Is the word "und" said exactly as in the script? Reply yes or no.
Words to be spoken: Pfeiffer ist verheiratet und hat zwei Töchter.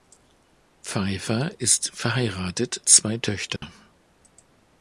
no